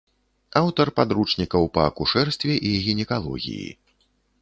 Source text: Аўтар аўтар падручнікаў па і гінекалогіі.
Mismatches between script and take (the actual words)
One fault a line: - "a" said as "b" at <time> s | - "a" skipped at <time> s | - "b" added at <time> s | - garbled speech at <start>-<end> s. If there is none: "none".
- "аўтар" skipped at 0.9 s
- "акушэрстве" added at 1.9 s